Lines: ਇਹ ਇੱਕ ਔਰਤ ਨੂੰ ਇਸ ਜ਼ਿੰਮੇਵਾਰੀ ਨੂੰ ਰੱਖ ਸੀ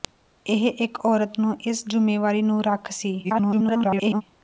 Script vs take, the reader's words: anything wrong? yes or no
yes